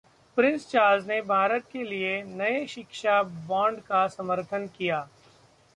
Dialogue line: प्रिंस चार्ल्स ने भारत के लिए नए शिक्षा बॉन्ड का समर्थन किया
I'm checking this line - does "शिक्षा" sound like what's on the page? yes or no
yes